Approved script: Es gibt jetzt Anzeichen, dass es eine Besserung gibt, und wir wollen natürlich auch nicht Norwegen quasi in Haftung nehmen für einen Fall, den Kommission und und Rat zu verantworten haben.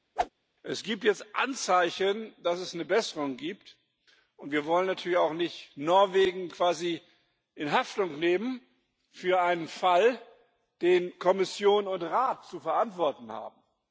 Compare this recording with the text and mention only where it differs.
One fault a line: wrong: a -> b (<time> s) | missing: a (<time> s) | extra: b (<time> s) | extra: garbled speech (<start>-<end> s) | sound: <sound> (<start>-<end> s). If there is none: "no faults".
sound: whoosh (0.2-0.3 s)
missing: und (12.0 s)